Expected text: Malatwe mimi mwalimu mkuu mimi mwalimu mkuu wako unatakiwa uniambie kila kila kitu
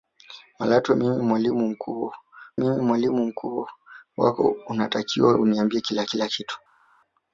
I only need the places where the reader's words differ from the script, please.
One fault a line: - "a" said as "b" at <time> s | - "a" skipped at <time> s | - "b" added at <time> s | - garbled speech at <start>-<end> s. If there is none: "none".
none